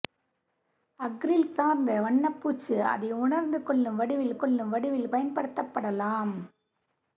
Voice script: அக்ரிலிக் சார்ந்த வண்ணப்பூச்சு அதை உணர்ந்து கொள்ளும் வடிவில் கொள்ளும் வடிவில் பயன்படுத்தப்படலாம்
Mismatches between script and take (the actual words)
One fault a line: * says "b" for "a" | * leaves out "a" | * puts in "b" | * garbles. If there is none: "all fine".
all fine